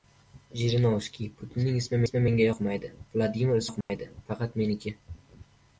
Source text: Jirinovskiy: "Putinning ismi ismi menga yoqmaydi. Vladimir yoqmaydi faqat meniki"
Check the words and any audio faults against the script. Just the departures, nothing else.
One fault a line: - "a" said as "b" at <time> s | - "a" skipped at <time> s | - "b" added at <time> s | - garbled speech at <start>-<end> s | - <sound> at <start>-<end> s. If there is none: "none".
- dropout at 3.8-3.9 s